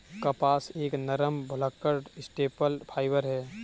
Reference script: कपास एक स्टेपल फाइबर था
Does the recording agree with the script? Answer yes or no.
no